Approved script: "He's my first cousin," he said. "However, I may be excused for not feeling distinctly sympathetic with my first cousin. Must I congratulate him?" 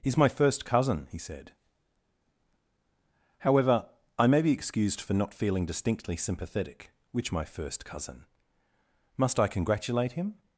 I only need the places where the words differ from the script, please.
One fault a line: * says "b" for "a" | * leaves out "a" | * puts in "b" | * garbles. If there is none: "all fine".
* says "which" for "with"